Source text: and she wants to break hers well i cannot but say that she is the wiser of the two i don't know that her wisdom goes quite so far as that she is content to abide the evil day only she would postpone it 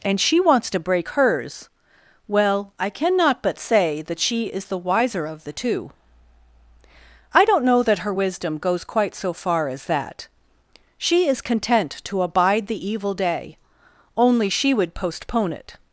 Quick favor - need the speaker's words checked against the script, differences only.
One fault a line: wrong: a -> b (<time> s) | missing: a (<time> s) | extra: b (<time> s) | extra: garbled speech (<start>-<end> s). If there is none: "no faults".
no faults